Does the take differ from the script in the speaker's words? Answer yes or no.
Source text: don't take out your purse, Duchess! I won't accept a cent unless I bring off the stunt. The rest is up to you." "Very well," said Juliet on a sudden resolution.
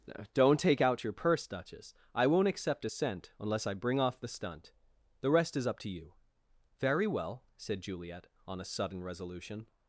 no